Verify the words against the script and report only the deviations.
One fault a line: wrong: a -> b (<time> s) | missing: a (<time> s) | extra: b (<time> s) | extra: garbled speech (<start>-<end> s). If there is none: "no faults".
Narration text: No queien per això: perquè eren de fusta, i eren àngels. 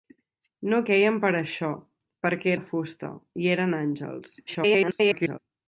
missing: eren (2.5 s)
extra: garbled speech (4.5-5.4 s)